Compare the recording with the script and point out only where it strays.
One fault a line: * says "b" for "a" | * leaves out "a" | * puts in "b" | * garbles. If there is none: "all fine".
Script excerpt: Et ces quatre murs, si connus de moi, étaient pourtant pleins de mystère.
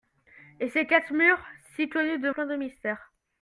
* leaves out "moi étaient pourtant"